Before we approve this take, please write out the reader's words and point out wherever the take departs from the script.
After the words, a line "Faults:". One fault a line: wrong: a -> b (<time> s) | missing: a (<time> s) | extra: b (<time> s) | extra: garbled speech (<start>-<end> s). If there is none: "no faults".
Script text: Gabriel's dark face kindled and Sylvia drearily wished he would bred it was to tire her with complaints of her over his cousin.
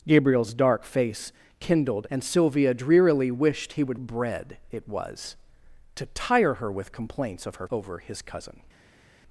Gabriel's dark face kindled and Sylvia drearily wished he would bred it was to tire her with complaints of her over his cousin.
Faults:
no faults